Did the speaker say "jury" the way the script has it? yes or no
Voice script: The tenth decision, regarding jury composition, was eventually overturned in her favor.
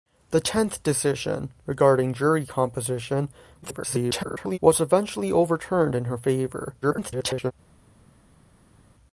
yes